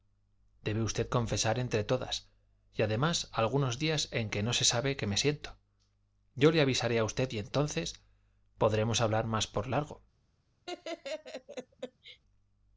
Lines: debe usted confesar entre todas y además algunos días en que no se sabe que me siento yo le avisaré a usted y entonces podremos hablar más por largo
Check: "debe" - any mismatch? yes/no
no